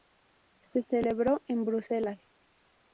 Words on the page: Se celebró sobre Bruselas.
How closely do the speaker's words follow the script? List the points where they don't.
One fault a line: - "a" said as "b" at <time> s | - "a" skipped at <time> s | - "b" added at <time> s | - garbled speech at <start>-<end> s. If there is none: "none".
- "sobre" said as "en" at 1.5 s